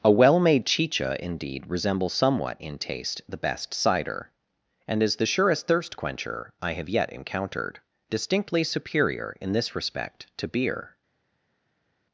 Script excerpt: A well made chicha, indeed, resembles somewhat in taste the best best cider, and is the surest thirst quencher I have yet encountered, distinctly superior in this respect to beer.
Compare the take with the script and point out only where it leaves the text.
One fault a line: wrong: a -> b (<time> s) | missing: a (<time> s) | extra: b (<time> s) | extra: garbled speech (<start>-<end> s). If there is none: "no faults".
missing: best (3.7 s)